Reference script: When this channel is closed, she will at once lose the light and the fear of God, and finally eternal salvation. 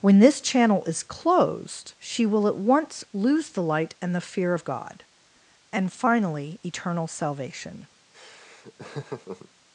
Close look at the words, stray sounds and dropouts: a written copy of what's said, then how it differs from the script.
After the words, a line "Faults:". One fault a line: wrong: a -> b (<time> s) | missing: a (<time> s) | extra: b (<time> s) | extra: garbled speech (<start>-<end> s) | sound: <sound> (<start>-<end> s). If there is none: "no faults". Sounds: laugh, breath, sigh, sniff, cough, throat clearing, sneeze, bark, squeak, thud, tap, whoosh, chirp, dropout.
When this channel is closed, she will at once lose the light and the fear of God, and finally eternal salvation.
Faults:
sound: laugh (8.1-9.5 s)